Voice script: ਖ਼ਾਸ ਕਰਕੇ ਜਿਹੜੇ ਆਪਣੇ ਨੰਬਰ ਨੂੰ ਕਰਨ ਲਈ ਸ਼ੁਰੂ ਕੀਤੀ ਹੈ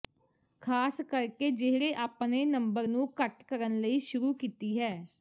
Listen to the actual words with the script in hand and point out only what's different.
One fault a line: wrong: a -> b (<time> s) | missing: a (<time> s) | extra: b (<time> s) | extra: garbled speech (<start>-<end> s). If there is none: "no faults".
extra: ਘੱਟ (3.2 s)